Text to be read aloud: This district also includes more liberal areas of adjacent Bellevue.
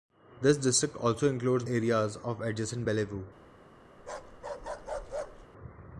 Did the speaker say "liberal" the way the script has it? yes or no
no